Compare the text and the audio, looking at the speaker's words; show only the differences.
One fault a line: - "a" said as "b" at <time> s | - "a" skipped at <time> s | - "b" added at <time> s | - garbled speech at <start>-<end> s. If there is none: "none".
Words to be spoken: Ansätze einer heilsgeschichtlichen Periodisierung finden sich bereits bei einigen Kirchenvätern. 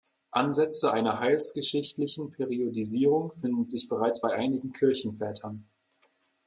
none